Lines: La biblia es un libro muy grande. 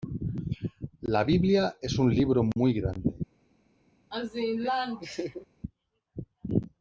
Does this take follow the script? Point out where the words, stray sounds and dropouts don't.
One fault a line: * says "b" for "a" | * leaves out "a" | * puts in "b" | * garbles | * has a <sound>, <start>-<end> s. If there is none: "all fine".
* has a laugh, 4.1-5.5 s